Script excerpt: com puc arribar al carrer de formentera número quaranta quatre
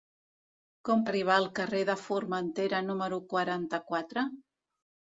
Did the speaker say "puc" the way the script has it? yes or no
no